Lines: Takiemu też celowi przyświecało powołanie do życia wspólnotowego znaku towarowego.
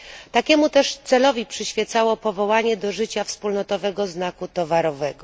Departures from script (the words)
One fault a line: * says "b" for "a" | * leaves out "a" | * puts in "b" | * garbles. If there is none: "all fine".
all fine